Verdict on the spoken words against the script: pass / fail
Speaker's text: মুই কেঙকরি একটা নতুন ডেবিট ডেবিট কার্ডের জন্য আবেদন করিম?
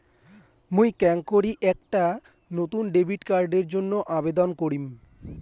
fail